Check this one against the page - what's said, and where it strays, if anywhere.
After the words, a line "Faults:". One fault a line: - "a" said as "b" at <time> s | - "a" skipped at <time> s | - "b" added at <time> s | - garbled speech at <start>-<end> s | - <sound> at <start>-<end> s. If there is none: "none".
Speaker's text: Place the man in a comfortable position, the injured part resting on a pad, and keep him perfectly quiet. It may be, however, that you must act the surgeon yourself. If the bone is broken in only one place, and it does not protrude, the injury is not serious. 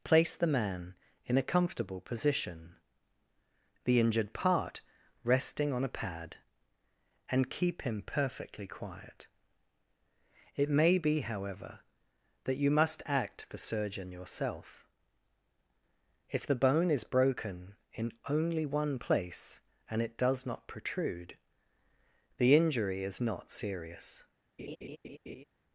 Place the man in a comfortable position, the injured part resting on a pad, and keep him perfectly quiet. It may be, however, that you must act the surgeon yourself. If the bone is broken in only one place, and it does not protrude, the injury is not serious.
Faults:
- laugh at 24.6-25.4 s